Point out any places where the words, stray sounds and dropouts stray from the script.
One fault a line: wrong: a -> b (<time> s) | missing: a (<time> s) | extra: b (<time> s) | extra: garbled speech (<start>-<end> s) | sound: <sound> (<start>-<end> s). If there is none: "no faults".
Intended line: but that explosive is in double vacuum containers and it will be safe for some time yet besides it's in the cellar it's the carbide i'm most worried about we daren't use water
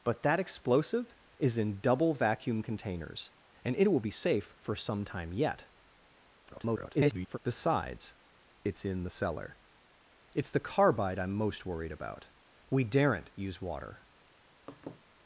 extra: garbled speech (6.5-7.4 s)
sound: laugh (14.7-15.0 s)